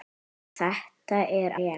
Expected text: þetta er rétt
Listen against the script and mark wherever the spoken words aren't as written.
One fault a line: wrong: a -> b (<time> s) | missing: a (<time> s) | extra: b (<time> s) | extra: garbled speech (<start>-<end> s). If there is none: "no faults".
no faults